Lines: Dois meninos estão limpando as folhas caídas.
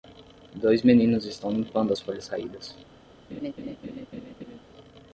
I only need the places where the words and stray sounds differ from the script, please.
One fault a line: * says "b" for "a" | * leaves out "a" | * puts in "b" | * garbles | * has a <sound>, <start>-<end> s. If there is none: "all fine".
* has a laugh, 3.3-4.6 s